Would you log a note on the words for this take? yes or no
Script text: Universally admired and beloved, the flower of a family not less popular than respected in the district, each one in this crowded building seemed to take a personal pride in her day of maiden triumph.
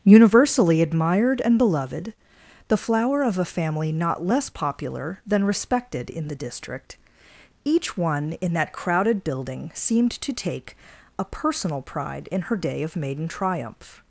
yes